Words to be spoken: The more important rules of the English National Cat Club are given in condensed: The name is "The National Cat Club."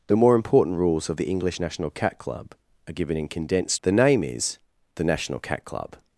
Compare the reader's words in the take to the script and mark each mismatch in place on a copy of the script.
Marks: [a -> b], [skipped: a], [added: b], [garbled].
The more important rules of the English National Cat Club are given in condensed: The name is "The National Cat Club."